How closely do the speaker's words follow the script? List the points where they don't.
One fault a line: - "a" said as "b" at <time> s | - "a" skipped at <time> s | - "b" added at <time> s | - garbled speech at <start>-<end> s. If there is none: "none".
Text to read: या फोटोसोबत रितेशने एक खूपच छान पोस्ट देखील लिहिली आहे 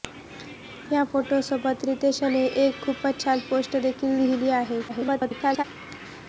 - garbled speech at 4.9-5.6 s